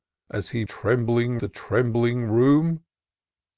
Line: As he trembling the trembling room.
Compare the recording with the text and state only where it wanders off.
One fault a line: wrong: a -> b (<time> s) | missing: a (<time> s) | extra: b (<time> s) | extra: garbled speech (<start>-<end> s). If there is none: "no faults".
no faults